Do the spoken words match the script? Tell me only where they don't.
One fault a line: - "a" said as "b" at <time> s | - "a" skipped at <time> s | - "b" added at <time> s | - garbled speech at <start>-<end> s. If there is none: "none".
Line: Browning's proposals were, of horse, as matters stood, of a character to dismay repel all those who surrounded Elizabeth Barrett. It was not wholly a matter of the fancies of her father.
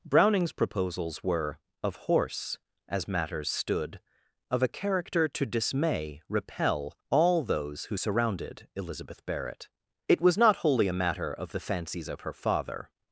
none